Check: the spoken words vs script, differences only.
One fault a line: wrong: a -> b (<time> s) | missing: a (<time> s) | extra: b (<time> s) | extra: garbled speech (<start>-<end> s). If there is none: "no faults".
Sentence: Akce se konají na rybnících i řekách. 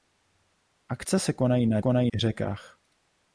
wrong: rybnících -> konají (1.8 s)